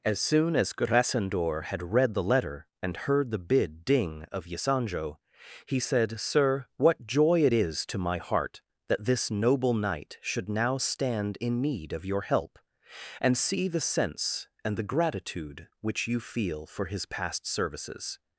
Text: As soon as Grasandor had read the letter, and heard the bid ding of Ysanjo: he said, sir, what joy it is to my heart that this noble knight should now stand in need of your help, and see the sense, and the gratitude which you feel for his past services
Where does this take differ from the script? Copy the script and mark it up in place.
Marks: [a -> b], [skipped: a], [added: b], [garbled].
As soon as Grasandor had read the letter, and heard the bid ding of Ysanjo: he said, sir, what joy it is to my heart that this noble knight should now stand in need of your help, and see the sense, and the gratitude which you feel for his past services